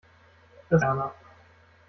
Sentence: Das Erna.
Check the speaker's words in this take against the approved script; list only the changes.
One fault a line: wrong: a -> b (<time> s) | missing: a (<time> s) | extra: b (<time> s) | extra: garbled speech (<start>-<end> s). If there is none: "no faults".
no faults